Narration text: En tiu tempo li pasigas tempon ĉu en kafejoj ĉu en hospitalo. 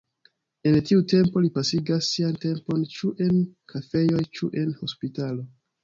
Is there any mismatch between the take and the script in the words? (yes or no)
yes